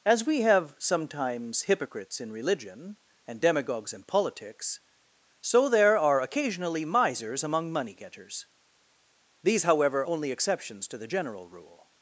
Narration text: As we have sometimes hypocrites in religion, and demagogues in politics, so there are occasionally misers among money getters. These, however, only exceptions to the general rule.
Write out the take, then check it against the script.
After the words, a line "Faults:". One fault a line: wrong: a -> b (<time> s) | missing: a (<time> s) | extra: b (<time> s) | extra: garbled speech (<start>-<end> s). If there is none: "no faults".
As we have sometimes hypocrites in religion, and demagogues in politics, so there are occasionally misers among money getters. These, however, only exceptions to the general rule.
Faults:
no faults